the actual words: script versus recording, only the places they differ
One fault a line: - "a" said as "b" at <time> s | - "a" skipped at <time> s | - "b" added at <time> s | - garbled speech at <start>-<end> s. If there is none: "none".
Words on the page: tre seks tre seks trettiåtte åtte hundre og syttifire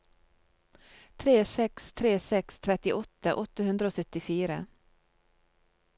none